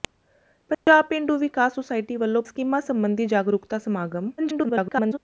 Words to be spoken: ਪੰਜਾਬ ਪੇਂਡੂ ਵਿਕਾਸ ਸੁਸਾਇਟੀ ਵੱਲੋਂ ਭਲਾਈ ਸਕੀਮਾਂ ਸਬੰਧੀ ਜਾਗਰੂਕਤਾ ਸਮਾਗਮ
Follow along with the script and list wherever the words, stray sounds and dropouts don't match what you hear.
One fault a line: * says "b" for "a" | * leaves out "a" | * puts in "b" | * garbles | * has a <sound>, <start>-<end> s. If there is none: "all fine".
* has a dropout, 0.7-0.9 s
* leaves out "ਭਲਾਈ"
* garbles